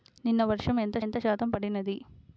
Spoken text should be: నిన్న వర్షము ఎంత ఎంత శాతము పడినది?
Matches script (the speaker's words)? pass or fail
pass